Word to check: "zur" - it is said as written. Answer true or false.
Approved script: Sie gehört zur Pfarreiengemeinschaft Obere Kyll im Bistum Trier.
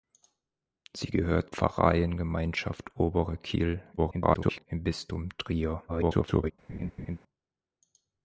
false